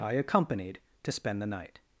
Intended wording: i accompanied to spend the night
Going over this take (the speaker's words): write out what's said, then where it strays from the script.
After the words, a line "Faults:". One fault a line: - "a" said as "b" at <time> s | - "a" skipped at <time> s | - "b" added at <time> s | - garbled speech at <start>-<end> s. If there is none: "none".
i accompanied to spend the night
Faults:
none